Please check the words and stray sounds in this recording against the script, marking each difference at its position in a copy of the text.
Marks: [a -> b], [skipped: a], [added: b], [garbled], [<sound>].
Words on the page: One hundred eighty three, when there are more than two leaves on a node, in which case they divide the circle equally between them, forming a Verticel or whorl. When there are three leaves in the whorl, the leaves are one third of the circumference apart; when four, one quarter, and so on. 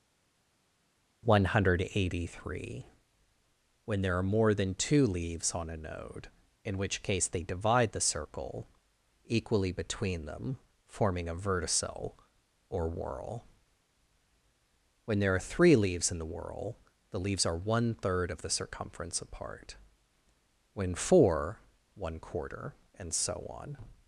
One hundred eighty three, when there are more than two leaves on a node, in which case they divide the circle equally between them, forming a Verticel or whorl. When there are three leaves in the whorl, the leaves are one third of the circumference apart; when four, one quarter, and so on.